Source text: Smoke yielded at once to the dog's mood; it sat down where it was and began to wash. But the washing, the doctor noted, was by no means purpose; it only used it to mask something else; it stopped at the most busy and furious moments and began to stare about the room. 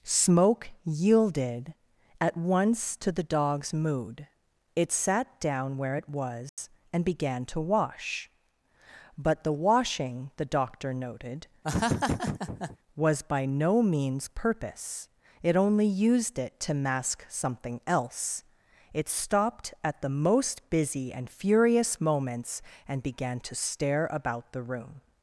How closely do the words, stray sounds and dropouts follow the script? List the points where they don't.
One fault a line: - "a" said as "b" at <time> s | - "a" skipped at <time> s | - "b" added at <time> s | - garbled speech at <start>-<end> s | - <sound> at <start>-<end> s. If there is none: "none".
- dropout at 6.5-6.6 s
- laugh at 11.6-12.8 s